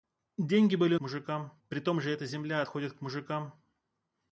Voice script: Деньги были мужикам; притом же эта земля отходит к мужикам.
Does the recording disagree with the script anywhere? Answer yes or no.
no